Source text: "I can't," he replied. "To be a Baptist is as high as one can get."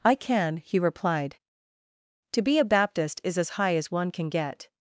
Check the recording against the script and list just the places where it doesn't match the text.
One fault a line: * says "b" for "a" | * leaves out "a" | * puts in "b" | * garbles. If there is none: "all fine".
* says "can" for "can't"